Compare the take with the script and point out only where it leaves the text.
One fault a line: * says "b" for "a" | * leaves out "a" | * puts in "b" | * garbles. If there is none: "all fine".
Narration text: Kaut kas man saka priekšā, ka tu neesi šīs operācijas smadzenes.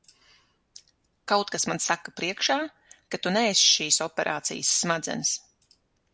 all fine